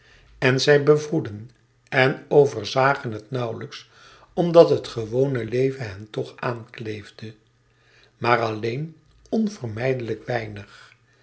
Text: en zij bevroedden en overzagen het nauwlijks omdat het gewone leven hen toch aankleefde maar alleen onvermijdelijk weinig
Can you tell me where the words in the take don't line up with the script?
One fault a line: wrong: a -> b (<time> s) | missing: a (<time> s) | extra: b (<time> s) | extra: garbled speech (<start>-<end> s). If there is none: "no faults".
no faults